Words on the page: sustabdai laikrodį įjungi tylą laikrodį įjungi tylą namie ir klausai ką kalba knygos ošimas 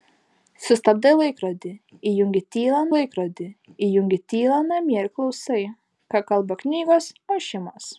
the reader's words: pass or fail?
pass